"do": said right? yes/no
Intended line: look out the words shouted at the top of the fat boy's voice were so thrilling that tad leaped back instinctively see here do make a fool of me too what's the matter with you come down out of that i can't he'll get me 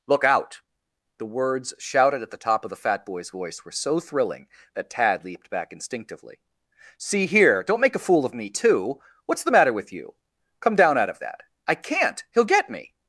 no